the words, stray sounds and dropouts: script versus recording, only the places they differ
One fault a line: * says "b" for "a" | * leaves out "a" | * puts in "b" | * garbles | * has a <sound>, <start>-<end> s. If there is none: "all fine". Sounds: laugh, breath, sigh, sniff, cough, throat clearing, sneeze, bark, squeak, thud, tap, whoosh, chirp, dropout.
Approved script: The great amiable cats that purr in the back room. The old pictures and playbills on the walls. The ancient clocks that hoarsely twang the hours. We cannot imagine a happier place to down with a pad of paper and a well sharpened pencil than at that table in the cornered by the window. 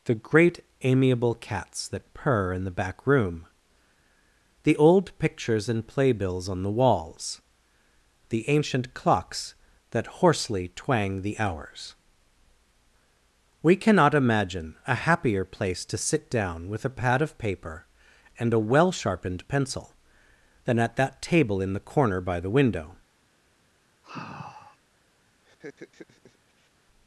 * puts in "sit"
* says "corner" for "cornered"
* has a sigh, 24.0-24.8 s
* has a laugh, 25.4-26.7 s